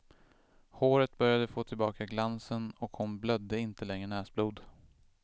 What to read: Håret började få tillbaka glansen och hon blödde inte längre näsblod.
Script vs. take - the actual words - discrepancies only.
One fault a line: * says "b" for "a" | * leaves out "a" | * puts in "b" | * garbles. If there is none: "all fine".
all fine